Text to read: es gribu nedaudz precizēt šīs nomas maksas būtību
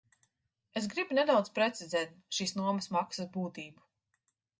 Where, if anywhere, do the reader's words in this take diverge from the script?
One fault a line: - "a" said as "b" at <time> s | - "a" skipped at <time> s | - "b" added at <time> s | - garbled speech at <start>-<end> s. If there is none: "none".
none